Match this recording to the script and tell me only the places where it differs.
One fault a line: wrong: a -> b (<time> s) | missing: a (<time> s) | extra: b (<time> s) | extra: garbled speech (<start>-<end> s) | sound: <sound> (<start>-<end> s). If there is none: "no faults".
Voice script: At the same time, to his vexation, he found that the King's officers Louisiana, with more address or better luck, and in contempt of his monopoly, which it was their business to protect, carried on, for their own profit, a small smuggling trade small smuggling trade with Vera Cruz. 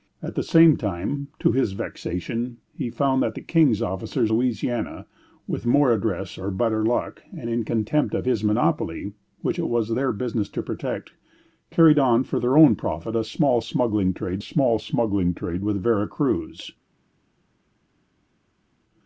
no faults